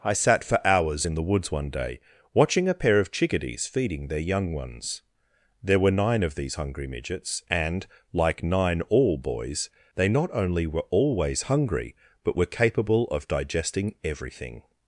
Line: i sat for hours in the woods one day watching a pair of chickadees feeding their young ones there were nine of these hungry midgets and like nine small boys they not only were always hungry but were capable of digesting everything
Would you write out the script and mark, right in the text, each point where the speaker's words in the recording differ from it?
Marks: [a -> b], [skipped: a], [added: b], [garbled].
i sat for hours in the woods one day watching a pair of chickadees feeding their young ones there were nine of these hungry midgets and like nine [small -> all] boys they not only were always hungry but were capable of digesting everything